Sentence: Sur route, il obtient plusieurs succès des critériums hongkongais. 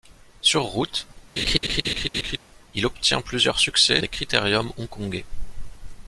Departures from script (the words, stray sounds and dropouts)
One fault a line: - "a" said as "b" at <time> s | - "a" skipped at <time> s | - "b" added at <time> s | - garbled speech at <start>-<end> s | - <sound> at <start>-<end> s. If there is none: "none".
- laugh at 1.4-2.4 s